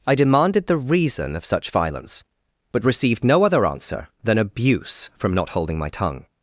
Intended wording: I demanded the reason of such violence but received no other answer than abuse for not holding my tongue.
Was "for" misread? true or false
true